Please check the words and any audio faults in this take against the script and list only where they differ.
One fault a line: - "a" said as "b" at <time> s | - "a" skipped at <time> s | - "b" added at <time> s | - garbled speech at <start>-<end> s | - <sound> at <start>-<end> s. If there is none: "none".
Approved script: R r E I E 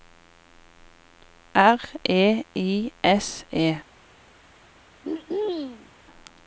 - "r" skipped at 1.8 s
- "S" added at 3.0 s
- throat clearing at 5.0-5.9 s